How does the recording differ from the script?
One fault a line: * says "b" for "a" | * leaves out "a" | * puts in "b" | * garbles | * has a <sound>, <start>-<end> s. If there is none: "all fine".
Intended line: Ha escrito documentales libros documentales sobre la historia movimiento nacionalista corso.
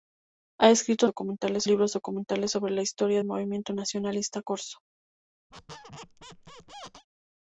* has a squeak, 5.5-7.1 s